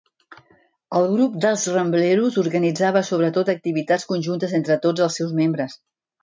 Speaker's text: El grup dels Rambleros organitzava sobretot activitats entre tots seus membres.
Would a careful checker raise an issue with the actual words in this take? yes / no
yes